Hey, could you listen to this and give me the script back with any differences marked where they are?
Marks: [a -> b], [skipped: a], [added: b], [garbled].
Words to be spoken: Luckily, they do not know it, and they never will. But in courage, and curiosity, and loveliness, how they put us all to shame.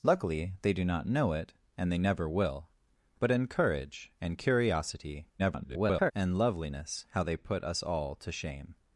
Luckily, they do not know it, and they never will. But in courage, and curiosity, [garbled] and loveliness, how they put us all to shame.